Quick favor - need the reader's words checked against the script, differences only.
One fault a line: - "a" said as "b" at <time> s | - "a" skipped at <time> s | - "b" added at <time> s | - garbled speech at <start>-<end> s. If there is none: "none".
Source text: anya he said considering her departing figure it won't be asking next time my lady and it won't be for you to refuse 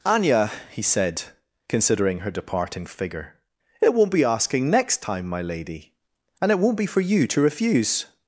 none